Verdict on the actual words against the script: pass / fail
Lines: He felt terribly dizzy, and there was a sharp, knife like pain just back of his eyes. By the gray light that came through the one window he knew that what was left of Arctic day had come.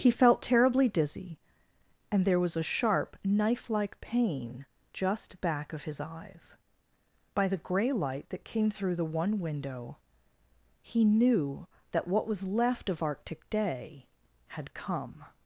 pass